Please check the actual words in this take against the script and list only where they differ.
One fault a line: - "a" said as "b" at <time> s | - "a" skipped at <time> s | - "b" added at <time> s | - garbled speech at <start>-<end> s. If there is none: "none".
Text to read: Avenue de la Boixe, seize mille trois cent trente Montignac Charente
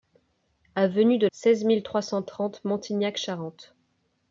- "la Boixe" skipped at 1.3 s